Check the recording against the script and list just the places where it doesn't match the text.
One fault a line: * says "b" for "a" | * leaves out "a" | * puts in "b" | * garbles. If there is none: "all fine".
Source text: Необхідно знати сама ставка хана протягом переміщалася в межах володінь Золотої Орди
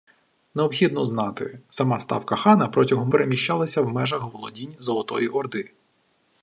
all fine